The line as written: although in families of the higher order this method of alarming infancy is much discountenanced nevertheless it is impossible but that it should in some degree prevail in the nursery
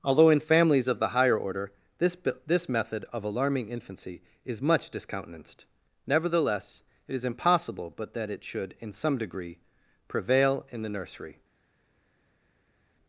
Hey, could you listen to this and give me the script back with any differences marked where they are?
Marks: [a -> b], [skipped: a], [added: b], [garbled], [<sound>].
although in families of the higher order this [added: this] method of alarming infancy is much discountenanced nevertheless it is impossible but that it should in some degree prevail in the nursery